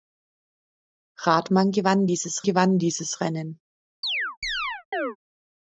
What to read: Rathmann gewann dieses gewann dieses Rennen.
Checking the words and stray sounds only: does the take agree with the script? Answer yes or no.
no